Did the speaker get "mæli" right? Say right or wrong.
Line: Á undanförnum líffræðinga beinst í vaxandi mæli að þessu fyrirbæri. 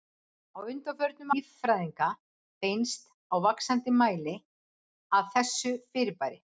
right